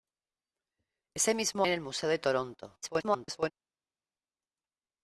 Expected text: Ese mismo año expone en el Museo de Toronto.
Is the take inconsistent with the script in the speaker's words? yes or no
yes